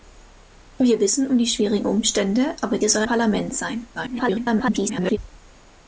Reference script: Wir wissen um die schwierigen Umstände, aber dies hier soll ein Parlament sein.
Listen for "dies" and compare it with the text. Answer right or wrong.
wrong